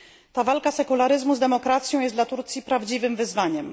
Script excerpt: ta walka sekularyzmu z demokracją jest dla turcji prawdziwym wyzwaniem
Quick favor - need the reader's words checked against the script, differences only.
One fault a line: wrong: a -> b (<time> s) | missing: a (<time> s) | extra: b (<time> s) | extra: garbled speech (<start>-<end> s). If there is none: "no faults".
no faults